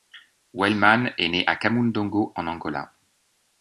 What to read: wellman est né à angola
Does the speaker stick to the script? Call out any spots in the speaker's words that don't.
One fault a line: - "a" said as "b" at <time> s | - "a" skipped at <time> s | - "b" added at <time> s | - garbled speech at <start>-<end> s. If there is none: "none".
- "kamundongo en" added at 1.5 s